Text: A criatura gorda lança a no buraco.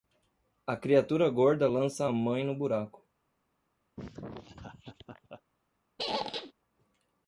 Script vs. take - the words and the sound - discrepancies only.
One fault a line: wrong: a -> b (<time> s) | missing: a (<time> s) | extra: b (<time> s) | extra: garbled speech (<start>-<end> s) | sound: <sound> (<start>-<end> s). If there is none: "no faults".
extra: mãe (2.1 s)
sound: laugh (4.0-5.4 s)
sound: squeak (6.0-6.5 s)